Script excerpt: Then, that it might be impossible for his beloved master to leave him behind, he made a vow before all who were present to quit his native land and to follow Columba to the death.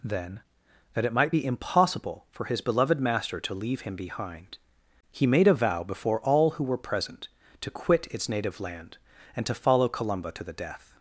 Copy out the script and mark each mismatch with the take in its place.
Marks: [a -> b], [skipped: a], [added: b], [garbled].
Then, that it might be impossible for his beloved master to leave him behind, he made a vow before all who were present to quit [his -> its] native land and to follow Columba to the death.